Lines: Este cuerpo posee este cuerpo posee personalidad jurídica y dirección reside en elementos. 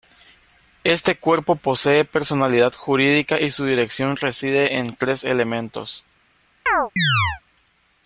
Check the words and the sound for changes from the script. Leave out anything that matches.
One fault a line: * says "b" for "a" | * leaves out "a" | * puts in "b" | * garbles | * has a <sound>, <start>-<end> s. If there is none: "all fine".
* leaves out "este cuerpo posee"
* puts in "su"
* puts in "tres"
* has a chirp, 6.7-7.4 s